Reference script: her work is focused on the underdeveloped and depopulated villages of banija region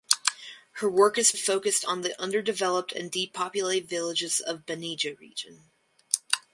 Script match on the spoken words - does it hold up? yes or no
yes